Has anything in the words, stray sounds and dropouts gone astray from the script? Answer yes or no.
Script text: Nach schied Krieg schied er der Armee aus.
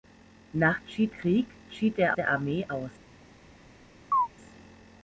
yes